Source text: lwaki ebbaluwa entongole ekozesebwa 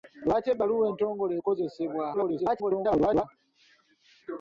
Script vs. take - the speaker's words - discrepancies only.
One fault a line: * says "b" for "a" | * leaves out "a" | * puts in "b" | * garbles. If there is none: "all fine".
* garbles